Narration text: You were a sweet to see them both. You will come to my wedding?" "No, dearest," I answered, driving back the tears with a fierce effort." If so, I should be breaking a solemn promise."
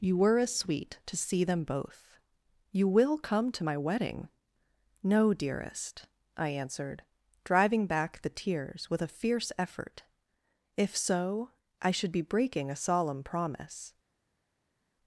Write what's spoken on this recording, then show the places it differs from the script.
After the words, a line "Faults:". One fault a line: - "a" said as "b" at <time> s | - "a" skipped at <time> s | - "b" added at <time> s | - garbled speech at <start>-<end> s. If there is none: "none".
You were a sweet to see them both. You will come to my wedding?" "No, dearest," I answered, driving back the tears with a fierce effort." If so, I should be breaking a solemn promise."
Faults:
none